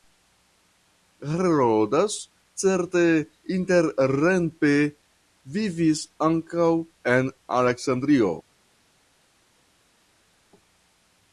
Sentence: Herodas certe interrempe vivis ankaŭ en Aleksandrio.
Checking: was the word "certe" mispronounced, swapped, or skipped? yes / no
no